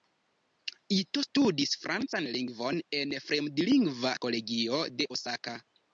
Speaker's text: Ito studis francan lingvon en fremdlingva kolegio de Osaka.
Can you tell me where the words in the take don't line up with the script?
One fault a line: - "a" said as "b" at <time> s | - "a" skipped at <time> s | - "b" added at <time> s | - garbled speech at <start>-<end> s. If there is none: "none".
none